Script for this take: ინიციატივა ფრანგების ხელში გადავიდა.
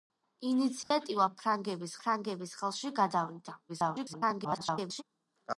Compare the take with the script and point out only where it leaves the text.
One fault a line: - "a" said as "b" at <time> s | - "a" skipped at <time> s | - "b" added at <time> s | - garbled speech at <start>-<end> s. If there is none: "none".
- "ფრანგების" added at 2.0 s
- garbled speech at 3.7-5.0 s